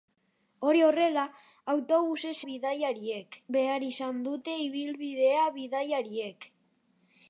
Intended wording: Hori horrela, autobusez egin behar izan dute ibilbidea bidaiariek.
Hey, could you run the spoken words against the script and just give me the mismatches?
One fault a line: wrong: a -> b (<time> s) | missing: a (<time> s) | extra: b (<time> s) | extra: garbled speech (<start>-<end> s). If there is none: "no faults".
wrong: egin -> bidaiariek (2.5 s)